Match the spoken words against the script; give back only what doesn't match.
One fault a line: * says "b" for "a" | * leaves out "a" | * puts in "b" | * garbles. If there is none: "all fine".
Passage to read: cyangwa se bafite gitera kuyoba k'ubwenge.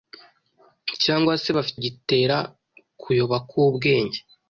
all fine